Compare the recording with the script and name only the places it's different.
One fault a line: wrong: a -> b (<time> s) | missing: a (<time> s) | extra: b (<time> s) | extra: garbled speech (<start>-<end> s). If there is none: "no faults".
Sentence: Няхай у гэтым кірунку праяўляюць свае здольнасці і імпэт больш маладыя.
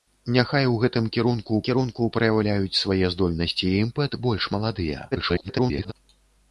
extra: кірунку (1.7 s)
extra: garbled speech (5.1-5.9 s)